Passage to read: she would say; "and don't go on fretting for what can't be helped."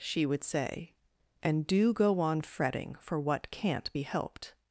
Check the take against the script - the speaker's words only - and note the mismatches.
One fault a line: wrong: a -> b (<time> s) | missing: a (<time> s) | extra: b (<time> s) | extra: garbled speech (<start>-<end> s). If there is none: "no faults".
wrong: don't -> do (1.7 s)